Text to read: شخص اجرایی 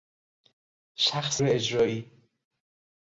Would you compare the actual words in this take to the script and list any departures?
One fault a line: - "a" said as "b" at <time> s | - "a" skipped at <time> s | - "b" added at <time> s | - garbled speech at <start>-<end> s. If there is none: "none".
none